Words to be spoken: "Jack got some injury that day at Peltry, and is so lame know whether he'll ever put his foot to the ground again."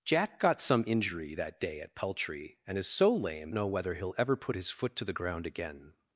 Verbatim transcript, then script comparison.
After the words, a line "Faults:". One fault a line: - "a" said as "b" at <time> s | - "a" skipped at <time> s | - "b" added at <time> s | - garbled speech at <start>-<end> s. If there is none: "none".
"Jack got some injury that day at Peltry, and is so lame know whether he'll ever put his foot to the ground again."
Faults:
none